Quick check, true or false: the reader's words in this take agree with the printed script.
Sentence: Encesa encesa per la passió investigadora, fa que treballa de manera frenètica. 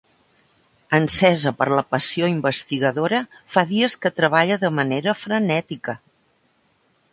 false